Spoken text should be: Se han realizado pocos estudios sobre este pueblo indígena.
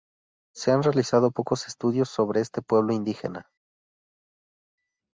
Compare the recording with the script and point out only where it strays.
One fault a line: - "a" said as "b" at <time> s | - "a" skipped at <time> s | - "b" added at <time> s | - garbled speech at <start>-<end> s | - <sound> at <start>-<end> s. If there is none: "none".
none